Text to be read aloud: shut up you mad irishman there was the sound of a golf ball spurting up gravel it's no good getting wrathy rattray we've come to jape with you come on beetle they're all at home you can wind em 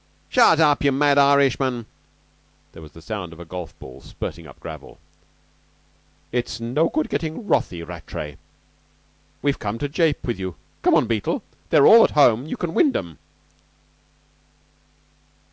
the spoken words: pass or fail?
pass